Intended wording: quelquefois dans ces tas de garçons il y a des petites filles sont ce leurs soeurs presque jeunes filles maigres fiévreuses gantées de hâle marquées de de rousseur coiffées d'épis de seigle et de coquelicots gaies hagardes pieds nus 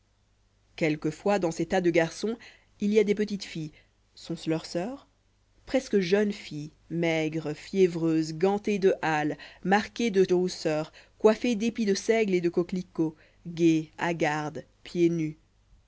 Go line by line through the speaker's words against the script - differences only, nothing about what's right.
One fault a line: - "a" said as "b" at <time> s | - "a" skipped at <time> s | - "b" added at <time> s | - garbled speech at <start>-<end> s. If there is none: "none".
none